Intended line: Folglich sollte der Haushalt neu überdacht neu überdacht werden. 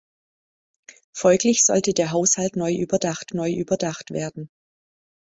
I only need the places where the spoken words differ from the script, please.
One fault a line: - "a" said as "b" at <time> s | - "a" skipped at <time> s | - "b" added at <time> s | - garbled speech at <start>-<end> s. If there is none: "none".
none